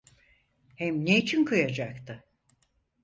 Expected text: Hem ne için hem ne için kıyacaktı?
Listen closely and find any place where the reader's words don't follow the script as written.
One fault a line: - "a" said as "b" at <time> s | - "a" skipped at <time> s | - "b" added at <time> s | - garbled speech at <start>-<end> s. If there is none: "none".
- "hem ne için" skipped at 1.4 s